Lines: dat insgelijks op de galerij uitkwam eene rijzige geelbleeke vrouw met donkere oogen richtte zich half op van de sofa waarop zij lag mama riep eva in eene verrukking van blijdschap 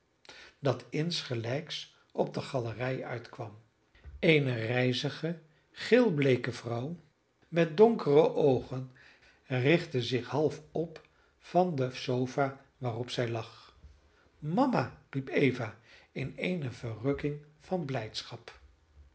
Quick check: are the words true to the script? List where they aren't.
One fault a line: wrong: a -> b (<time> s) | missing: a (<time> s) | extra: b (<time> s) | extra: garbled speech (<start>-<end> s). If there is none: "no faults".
no faults